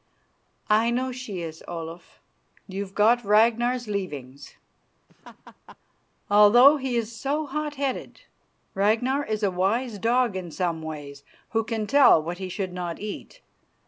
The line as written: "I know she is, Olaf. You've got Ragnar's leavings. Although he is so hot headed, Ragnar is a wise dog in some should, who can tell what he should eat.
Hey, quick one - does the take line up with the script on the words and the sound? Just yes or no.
no